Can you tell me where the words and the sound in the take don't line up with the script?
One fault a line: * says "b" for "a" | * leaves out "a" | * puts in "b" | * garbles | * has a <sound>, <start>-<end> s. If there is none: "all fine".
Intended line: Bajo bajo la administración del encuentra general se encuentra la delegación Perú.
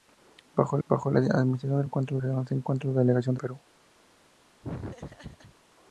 * has a laugh, 4.6-5.6 s